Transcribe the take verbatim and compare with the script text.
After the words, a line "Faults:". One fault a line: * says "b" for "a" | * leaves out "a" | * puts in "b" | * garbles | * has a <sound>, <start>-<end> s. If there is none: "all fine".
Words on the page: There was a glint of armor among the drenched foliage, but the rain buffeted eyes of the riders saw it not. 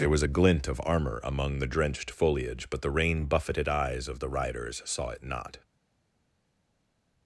There was a glint of armor among the drenched foliage, but the rain buffeted eyes of the riders saw it not.
Faults:
all fine